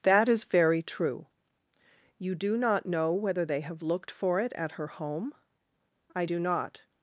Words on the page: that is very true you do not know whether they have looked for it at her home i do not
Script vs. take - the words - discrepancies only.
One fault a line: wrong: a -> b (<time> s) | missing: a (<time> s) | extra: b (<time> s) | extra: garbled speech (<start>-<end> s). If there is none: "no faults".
no faults